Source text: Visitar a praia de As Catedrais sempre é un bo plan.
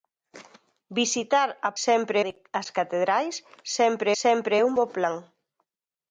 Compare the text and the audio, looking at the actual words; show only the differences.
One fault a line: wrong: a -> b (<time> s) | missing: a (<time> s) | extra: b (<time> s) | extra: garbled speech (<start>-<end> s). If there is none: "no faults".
wrong: praia -> sempre (1.8 s)
extra: sempre (4.2 s)